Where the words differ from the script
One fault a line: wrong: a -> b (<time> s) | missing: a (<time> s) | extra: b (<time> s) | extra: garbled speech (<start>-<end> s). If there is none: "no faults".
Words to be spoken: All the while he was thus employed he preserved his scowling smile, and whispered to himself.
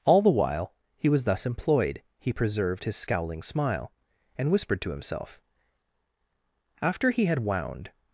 extra: After he had wound (6.8 s)